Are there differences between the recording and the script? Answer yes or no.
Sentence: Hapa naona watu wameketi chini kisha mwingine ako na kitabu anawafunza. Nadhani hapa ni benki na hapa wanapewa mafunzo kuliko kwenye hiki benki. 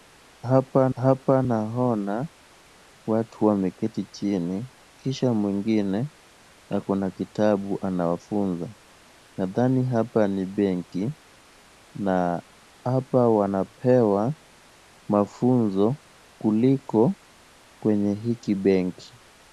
yes